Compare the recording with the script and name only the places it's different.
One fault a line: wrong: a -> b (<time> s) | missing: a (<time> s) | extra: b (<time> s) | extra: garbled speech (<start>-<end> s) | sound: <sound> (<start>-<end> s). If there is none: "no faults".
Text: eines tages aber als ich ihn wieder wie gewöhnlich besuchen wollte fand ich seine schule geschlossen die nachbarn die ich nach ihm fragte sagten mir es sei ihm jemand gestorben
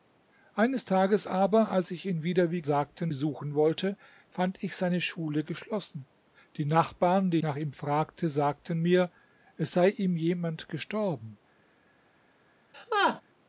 wrong: gewöhnlich -> sagten (2.6 s)
missing: ich (7.4 s)
sound: laugh (12.7-13.2 s)